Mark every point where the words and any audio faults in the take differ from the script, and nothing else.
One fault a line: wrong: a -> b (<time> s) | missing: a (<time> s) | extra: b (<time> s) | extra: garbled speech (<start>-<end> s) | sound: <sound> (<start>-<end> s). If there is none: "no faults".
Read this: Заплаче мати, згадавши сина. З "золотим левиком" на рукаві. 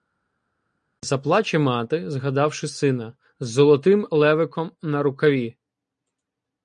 no faults